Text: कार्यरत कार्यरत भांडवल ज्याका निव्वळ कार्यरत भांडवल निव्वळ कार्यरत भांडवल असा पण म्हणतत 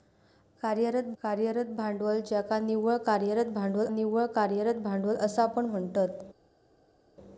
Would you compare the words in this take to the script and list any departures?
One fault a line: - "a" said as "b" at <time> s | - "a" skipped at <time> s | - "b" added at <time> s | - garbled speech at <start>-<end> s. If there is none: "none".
none